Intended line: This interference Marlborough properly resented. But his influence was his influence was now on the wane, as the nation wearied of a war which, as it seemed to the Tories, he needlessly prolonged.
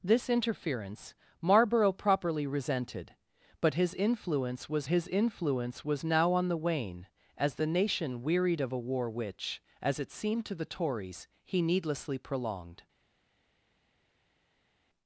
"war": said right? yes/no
yes